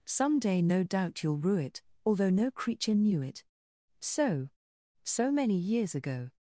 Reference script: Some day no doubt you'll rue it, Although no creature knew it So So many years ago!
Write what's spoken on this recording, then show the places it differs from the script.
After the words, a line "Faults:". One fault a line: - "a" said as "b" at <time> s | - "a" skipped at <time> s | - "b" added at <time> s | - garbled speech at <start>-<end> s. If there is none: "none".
Some day no doubt you'll rue it, Although no creature knew it So So many years ago!
Faults:
none